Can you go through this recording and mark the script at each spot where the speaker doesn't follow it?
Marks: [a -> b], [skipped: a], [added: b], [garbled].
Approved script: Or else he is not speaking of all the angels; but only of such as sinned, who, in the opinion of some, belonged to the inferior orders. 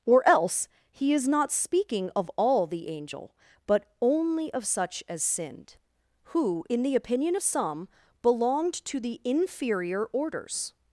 Or else he is not speaking of all the [angels; -> angel] but only of such as sinned, who, in the opinion of some, belonged to the inferior orders.